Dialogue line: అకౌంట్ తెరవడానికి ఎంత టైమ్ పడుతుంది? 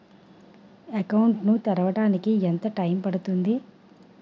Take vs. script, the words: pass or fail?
fail